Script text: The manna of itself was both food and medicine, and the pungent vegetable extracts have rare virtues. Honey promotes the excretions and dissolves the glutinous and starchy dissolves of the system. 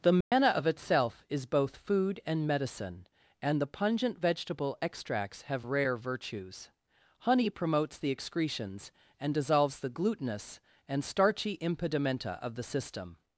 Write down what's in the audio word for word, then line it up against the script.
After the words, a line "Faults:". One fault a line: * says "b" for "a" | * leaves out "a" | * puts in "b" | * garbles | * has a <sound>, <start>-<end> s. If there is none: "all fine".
The manna of itself is both food and medicine, and the pungent vegetable extracts have rare virtues. Honey promotes the excretions and dissolves the glutinous and starchy impedimenta of the system.
Faults:
* has a dropout, 0.2-0.3 s
* says "is" for "was"
* says "impedimenta" for "dissolves"